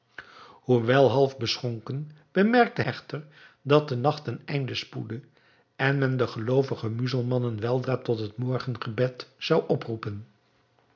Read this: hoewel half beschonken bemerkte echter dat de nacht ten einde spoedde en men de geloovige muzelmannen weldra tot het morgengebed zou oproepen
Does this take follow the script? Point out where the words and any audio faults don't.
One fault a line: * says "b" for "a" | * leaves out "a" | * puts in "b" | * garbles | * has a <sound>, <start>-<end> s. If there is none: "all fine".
all fine